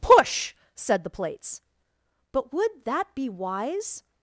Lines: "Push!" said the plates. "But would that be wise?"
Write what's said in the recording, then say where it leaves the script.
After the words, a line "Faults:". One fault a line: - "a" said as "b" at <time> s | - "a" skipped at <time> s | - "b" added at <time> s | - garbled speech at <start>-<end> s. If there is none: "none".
"Push!" said the plates. "But would that be wise?"
Faults:
none